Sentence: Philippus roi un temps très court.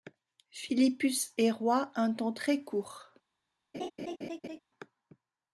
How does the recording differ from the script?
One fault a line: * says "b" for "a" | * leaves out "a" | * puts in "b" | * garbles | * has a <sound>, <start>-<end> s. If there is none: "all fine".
* puts in "est"
* has a laugh, 3.7-4.6 s